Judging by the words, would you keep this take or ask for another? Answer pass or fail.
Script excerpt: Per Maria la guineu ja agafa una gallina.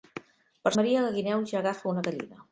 pass